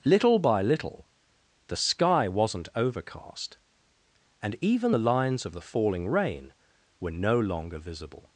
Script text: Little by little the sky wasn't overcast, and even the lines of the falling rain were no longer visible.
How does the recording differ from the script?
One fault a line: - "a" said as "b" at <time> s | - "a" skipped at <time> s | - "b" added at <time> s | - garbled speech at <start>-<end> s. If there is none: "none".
none